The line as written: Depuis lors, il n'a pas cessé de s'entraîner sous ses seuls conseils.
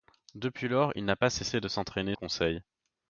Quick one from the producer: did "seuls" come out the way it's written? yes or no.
no